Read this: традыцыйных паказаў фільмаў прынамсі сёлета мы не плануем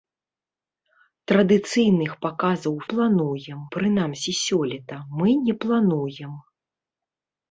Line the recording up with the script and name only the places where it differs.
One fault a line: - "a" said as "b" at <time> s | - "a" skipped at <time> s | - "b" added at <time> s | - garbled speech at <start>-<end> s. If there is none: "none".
- "фільмаў" said as "плануем" at 2.9 s